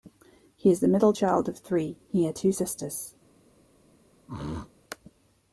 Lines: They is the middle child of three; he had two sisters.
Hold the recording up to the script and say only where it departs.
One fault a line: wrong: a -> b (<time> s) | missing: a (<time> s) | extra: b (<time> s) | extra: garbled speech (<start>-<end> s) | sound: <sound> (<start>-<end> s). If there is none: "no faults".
wrong: They -> He (0.6 s)
sound: throat clearing (4.3-4.7 s)